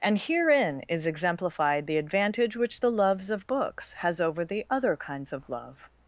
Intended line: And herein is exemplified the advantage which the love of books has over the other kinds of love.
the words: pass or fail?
fail